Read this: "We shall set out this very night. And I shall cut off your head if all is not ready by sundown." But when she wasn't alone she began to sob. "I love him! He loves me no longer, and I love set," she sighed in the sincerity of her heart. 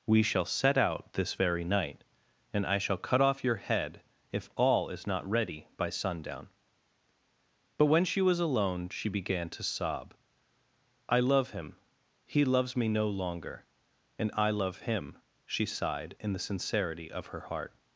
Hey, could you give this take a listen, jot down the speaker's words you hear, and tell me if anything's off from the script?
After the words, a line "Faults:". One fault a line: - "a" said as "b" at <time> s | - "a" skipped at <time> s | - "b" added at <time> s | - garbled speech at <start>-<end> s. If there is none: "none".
"We shall set out this very night. And I shall cut off your head if all is not ready by sundown." But when she was alone she began to sob. "I love him! He loves me no longer, and I love him," she sighed in the sincerity of her heart.
Faults:
- "wasn't" said as "was" at 8.2 s
- "set" said as "him" at 14.8 s